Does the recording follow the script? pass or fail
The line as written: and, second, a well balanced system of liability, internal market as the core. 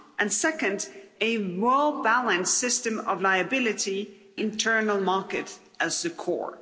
pass